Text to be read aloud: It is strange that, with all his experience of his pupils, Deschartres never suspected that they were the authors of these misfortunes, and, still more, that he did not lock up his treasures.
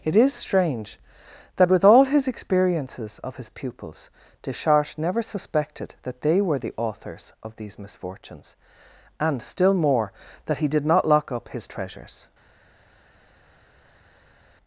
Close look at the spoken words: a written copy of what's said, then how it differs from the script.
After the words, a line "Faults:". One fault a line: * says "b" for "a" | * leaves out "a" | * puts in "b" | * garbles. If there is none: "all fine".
It is strange that, with all his experiences of his pupils, Deschartres never suspected that they were the authors of these misfortunes, and, still more, that he did not lock up his treasures.
Faults:
* says "experiences" for "experience"